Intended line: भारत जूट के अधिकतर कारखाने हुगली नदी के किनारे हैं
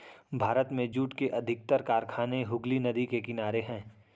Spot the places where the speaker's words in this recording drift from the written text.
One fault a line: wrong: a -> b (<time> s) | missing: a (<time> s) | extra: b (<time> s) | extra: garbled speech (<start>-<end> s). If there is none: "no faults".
extra: में (0.7 s)